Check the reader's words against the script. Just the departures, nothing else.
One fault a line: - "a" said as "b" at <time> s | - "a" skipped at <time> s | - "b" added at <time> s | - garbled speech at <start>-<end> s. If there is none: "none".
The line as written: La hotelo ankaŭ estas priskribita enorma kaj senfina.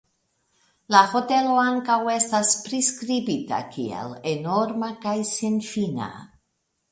- "kiel" added at 3.8 s